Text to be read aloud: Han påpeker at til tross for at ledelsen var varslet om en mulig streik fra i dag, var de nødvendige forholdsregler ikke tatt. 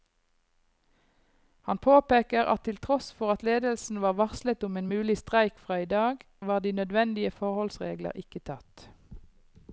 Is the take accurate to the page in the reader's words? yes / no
yes